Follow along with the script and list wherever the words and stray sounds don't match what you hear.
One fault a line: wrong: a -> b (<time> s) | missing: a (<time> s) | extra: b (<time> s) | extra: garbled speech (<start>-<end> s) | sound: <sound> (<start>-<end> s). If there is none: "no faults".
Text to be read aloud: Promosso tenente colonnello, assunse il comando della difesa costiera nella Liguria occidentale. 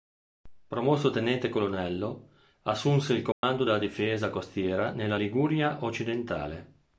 sound: dropout (3.3-3.4 s)